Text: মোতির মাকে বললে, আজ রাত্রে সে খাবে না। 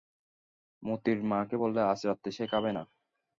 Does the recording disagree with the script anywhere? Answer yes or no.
no